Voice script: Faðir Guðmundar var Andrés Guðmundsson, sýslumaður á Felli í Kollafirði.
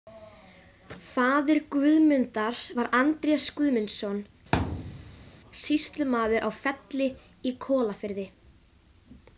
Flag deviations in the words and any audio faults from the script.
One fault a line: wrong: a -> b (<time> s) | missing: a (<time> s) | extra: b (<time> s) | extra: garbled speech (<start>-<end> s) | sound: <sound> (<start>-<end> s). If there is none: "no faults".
sound: thud (4.5-5.3 s)